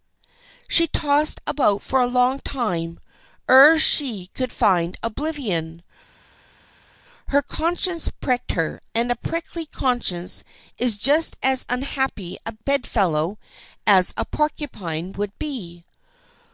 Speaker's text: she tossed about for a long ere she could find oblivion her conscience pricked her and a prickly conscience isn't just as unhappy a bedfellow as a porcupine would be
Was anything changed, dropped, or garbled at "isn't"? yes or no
yes